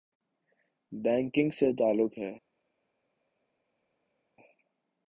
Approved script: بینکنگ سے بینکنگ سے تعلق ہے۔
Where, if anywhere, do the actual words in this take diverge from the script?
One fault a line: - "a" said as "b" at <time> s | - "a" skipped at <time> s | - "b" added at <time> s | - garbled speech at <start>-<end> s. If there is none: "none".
- "بینکنگ سے" skipped at 1.7 s